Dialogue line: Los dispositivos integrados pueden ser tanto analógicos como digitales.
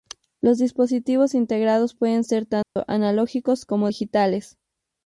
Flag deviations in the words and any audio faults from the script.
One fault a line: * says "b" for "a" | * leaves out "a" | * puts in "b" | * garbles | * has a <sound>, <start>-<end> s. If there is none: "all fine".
* has a dropout, 2.6-2.8 s